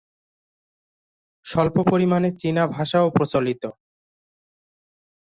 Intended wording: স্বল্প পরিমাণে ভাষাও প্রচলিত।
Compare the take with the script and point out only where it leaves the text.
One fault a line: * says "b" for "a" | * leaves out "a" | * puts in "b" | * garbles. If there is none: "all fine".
* puts in "চীনা"